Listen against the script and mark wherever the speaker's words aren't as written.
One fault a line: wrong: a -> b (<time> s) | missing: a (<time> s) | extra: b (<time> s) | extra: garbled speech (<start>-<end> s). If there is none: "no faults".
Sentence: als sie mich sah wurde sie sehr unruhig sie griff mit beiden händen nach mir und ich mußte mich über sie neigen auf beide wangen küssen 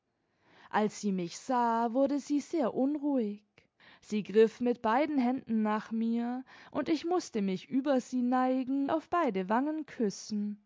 no faults